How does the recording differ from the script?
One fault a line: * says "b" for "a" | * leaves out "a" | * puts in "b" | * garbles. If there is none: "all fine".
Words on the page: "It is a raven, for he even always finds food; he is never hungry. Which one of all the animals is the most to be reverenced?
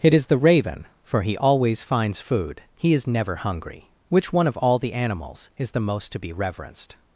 * says "the" for "a"
* leaves out "even"